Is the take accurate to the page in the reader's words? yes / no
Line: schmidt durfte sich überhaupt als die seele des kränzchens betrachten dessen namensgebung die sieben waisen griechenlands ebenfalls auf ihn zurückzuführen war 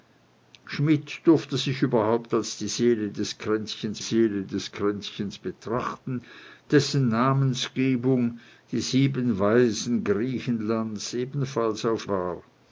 no